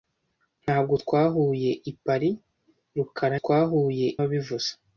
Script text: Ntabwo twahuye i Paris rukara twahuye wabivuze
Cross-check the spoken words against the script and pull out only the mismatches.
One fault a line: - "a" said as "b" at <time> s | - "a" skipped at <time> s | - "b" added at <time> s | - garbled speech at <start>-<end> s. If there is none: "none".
none